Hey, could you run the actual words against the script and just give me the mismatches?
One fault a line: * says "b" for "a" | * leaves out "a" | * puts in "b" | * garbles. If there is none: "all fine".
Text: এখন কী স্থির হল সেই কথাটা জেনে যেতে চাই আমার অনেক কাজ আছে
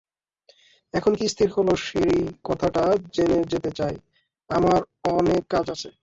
all fine